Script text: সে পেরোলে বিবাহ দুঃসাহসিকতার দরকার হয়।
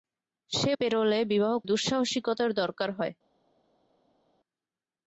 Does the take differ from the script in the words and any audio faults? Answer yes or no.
no